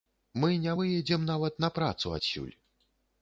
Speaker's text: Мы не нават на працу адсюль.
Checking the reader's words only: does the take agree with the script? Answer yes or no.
no